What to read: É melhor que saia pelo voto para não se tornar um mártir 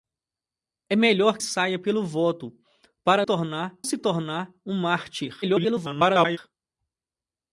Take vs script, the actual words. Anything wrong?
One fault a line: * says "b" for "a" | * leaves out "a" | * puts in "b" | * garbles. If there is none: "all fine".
* leaves out "que"
* says "tornar" for "não"
* garbles